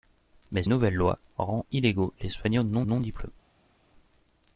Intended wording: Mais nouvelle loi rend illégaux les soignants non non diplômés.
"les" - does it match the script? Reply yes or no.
yes